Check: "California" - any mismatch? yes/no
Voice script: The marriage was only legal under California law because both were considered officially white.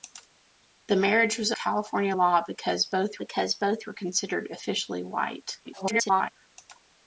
yes